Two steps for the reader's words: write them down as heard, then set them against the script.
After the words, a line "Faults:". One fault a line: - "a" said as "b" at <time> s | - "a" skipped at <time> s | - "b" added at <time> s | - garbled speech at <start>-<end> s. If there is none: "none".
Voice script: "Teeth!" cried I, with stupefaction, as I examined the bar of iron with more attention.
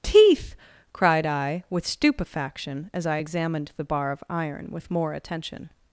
"Teeth!" cried I, with stupefaction, as I examined the bar of iron with more attention.
Faults:
none